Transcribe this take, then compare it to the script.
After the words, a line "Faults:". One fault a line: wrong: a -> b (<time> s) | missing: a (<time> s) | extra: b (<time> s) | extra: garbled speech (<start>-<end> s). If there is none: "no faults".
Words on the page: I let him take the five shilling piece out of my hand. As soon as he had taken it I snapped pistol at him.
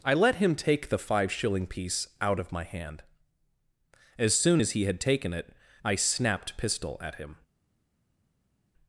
I let him take the five shilling piece out of my hand. As soon as he had taken it I snapped pistol at him.
Faults:
no faults